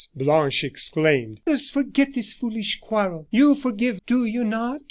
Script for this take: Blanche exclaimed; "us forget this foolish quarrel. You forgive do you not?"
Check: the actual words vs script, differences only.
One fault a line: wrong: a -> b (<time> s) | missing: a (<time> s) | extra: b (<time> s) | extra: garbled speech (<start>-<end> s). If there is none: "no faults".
no faults